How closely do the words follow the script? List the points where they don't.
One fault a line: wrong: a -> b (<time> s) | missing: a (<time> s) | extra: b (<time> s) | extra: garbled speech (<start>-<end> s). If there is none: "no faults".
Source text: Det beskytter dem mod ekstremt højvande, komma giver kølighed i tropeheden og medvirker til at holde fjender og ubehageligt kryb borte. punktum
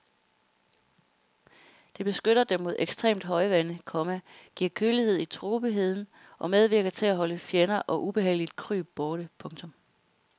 no faults